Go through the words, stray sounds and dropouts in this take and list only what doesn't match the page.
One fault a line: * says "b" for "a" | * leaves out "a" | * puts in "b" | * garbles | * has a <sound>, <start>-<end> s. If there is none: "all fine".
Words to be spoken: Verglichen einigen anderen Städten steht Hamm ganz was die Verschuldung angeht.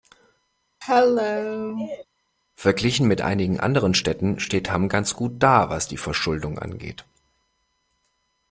* has a cough, 0.8-2.1 s
* puts in "mit"
* puts in "gut da"